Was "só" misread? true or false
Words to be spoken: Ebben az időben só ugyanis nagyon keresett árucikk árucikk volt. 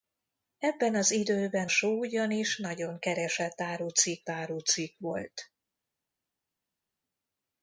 false